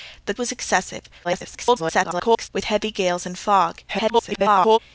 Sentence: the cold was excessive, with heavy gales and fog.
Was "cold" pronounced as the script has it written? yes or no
no